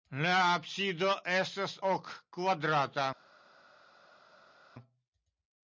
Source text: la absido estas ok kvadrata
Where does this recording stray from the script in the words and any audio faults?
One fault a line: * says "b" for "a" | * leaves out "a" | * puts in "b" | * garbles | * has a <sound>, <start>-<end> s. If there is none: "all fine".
all fine